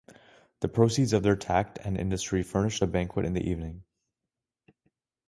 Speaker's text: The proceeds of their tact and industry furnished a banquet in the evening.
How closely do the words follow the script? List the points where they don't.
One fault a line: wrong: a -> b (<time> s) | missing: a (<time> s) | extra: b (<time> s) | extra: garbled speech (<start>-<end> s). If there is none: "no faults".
no faults